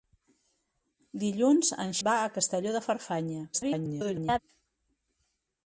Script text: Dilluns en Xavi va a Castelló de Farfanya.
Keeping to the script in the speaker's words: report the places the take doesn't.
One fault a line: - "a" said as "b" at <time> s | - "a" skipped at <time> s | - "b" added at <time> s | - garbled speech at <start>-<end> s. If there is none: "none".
- "Xavi" skipped at 1.9 s
- garbled speech at 3.5-4.4 s